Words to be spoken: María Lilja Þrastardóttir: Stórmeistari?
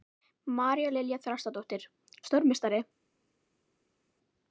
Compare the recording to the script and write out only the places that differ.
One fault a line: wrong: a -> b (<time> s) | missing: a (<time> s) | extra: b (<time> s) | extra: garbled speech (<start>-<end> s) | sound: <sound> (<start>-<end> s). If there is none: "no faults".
no faults